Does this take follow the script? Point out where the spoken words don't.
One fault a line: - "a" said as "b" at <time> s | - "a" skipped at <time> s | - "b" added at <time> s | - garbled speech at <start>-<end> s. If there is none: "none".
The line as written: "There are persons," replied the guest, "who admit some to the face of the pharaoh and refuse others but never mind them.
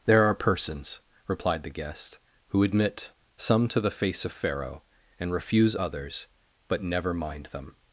- "the" skipped at 4.3 s